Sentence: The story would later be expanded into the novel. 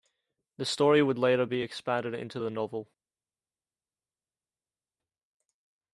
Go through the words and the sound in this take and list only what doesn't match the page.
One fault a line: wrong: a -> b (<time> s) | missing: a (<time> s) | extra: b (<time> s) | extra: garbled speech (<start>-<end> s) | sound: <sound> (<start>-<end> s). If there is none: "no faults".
no faults